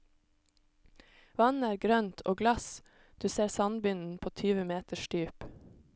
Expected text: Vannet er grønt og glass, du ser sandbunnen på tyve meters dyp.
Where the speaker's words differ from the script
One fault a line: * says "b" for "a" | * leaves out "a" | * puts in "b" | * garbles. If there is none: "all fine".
all fine